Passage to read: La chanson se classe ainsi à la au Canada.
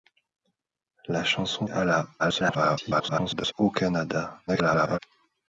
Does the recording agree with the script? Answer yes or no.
no